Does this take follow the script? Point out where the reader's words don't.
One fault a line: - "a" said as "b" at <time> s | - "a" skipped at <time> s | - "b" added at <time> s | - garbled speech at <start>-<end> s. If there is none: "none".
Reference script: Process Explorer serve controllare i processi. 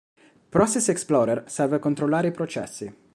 none